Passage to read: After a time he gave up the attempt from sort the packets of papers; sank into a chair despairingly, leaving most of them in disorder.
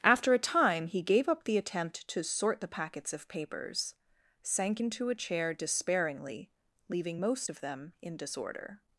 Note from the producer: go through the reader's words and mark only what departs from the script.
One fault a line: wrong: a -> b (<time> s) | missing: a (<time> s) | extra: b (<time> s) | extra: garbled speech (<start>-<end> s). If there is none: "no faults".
wrong: from -> to (2.1 s)